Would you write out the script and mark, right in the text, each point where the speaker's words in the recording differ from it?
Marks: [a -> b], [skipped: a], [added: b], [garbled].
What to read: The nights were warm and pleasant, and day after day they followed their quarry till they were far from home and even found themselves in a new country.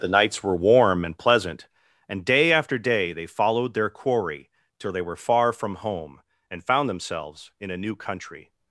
The nights were warm and pleasant, and day after day they followed their quarry till they were far from home and [skipped: even] found themselves in a new country.